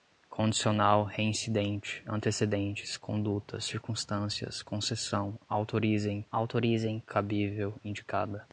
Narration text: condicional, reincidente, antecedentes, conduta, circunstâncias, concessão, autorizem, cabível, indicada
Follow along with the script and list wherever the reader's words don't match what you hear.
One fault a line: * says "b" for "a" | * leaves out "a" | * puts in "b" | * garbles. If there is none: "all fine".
* puts in "autorizem"